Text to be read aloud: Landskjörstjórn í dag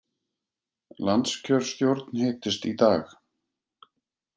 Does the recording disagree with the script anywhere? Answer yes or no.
yes